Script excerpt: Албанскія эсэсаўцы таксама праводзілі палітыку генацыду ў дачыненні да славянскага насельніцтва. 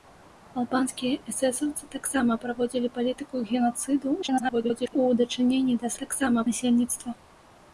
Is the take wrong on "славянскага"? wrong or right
wrong